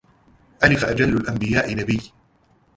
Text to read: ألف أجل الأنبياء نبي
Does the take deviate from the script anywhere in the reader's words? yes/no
no